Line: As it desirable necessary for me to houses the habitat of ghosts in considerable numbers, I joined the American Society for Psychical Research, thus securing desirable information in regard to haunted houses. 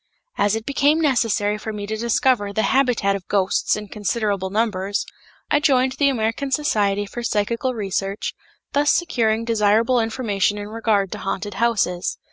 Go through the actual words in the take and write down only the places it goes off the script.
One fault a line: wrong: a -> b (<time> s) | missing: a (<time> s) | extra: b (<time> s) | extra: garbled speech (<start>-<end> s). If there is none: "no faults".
wrong: desirable -> became (0.7 s)
wrong: houses -> discover (1.9 s)